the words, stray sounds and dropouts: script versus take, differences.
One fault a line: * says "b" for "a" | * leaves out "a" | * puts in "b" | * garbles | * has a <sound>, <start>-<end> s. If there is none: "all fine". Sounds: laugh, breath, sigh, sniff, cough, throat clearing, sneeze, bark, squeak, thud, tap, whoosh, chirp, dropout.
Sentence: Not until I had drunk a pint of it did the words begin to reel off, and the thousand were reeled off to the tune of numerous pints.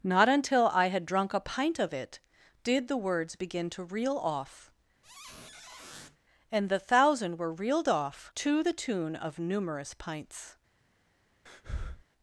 * has a squeak, 5.0-6.2 s
* has a breath, 11.5-12.1 s